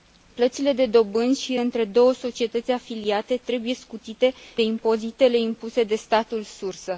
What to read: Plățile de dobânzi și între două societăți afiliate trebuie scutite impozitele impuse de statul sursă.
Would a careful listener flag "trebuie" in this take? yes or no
no